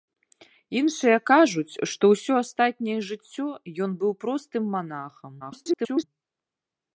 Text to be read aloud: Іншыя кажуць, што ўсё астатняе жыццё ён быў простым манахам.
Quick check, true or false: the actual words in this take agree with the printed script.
false